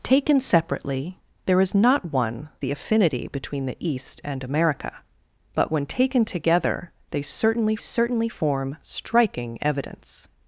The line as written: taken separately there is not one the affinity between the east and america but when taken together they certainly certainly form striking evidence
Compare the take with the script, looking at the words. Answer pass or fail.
pass